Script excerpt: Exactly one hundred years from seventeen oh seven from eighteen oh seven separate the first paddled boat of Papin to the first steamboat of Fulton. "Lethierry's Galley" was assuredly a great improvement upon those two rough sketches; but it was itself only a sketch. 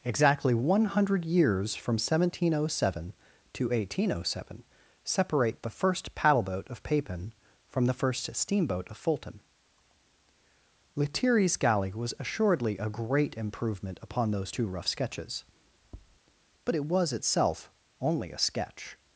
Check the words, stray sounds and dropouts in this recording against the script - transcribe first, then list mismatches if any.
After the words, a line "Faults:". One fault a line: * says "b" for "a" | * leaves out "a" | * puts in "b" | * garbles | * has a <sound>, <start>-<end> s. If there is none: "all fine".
Exactly one hundred years from seventeen oh seven to eighteen oh seven separate the first paddle boat of Papin from the first steamboat of Fulton. "Lethierry's Galley" was assuredly a great improvement upon those two rough sketches; but it was itself only a sketch.
Faults:
* says "to" for "from"
* says "paddle" for "paddled"
* says "from" for "to"
* has a tap, 15.8-16.2 s